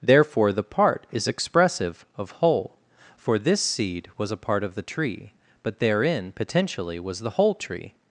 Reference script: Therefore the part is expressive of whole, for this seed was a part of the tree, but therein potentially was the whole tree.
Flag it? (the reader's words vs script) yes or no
no